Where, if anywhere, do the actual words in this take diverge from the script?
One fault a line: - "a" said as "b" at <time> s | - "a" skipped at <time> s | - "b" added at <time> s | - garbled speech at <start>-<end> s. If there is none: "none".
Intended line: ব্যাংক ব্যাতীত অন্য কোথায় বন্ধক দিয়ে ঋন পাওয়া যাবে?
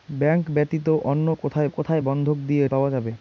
- "কোথায়" added at 1.7 s
- "ঋন" skipped at 2.6 s